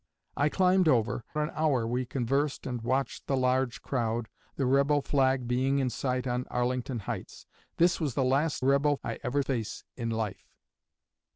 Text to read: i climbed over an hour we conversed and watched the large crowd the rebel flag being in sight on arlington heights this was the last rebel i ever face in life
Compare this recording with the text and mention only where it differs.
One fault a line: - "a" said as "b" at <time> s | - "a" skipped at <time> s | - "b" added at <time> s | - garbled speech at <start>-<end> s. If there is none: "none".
none